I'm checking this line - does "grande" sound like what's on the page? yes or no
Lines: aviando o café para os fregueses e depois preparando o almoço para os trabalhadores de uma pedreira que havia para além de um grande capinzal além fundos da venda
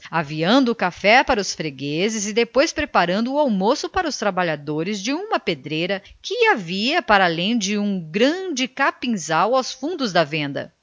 yes